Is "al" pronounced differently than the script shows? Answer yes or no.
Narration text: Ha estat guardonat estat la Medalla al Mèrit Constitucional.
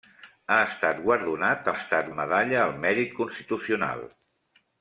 no